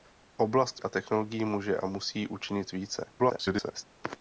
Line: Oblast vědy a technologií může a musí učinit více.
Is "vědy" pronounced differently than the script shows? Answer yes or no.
yes